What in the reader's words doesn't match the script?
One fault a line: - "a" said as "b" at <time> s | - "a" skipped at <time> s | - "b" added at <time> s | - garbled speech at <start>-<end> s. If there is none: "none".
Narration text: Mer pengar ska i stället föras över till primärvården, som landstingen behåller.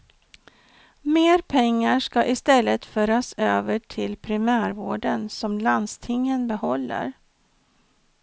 none